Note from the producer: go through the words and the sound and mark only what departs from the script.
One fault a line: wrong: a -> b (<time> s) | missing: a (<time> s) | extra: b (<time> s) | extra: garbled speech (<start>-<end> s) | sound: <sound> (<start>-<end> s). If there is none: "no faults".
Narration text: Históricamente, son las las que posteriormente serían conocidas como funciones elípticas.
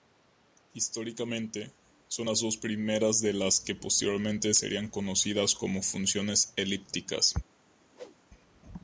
extra: dos primeras de (2.4 s)
sound: whoosh (7.9-8.2 s)